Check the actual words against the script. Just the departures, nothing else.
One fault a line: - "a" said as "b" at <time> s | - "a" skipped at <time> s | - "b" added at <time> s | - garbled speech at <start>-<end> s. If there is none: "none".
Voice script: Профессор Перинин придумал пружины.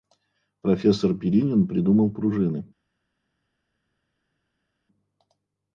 none